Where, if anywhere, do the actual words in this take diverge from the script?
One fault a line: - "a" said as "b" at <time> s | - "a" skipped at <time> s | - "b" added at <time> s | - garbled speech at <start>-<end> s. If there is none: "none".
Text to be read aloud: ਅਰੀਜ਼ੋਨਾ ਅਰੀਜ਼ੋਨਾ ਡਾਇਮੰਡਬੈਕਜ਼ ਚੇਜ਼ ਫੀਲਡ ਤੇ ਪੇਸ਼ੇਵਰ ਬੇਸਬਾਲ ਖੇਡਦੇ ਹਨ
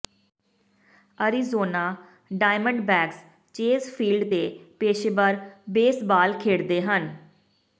- "ਅਰੀਜ਼ੋਨਾ" skipped at 1.8 s